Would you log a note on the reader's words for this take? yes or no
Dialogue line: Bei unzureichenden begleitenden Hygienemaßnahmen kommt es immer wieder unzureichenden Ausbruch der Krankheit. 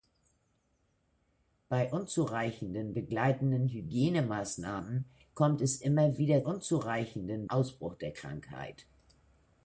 no